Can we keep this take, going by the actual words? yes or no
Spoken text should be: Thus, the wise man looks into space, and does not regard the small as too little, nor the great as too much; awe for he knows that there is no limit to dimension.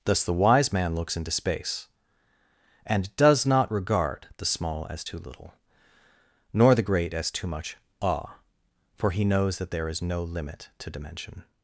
yes